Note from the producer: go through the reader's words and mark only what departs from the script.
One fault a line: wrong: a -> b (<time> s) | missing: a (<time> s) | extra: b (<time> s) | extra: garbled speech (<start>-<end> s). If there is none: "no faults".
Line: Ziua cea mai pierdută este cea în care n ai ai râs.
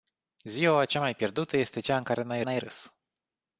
no faults